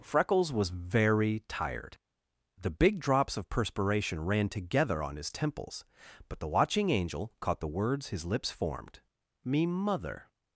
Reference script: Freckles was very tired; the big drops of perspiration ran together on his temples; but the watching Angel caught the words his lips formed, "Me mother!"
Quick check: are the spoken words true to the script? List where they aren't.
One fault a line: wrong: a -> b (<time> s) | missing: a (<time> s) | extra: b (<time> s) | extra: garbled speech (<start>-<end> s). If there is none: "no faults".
no faults